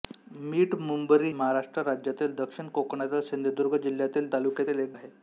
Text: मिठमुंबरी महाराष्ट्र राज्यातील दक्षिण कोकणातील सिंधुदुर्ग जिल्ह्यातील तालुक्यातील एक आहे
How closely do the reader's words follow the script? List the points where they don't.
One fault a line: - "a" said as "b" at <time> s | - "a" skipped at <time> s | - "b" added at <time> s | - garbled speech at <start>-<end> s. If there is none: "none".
none